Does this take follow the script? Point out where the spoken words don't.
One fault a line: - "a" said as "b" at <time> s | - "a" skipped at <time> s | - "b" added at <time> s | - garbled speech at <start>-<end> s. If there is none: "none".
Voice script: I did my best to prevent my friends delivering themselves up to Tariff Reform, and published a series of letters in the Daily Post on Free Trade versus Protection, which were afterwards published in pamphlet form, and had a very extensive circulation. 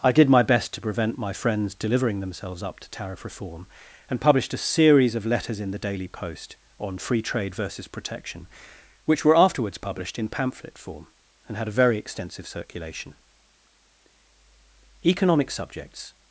- "Economic subjects" added at 15.1 s